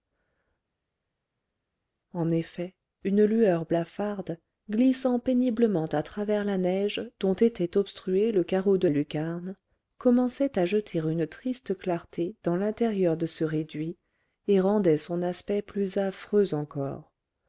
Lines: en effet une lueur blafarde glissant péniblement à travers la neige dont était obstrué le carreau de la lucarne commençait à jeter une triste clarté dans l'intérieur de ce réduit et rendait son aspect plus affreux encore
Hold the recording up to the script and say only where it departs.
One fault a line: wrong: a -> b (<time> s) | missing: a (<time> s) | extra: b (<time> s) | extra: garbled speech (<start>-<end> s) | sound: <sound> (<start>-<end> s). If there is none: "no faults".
missing: la (8.9 s)